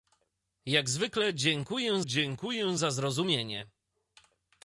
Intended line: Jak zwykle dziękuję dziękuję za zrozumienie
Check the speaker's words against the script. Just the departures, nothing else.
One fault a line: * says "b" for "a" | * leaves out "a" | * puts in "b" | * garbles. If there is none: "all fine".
all fine